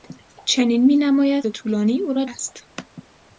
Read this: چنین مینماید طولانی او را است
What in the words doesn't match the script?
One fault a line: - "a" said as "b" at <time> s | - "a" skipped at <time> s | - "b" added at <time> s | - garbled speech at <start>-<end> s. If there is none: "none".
none